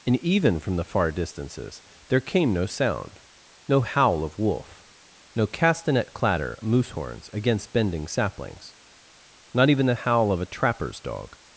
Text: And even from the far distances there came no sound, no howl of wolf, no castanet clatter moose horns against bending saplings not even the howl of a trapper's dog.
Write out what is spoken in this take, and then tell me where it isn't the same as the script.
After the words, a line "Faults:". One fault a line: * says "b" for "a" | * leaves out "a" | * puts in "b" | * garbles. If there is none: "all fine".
And even from the far distances there came no sound, no howl of wolf, no castanet clatter moose horns against bending saplings not even the howl of a trapper's dog.
Faults:
all fine